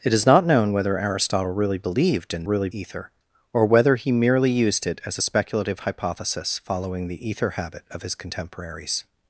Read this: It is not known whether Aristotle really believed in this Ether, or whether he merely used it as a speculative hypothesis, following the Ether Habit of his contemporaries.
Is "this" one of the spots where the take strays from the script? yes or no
yes